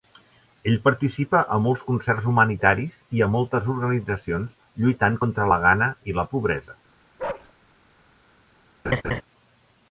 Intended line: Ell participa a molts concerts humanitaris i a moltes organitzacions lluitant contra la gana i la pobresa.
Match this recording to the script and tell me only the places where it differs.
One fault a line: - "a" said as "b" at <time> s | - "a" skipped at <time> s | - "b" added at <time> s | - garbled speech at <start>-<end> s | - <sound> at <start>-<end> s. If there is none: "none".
- bark at 7.2-7.5 s
- laugh at 8.8-9.2 s